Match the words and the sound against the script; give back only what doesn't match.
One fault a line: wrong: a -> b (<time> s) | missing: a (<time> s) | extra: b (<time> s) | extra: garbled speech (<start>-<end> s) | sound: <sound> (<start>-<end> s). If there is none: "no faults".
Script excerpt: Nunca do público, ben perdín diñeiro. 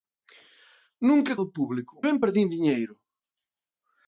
no faults